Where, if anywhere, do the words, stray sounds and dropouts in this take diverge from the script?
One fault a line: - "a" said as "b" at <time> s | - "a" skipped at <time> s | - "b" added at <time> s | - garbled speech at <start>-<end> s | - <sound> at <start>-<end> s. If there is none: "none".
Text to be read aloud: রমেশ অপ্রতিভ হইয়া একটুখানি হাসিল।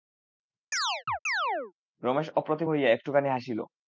- chirp at 0.7-1.7 s